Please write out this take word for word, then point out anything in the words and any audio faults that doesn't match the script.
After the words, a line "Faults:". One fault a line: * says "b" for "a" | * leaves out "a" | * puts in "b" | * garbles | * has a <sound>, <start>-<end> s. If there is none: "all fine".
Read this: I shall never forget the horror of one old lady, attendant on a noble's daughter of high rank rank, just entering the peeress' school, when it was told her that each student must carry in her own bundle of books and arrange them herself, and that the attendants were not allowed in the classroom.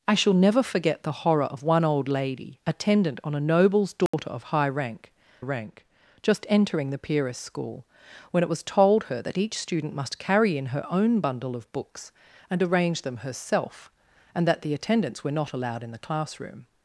I shall never forget the horror of one old lady, attendant on a noble's daughter of high rank rank, just entering the peeress' school, when it was told her that each student must carry in her own bundle of books and arrange them herself, and that the attendants were not allowed in the classroom.
Faults:
* has a dropout, 4.1-4.1 s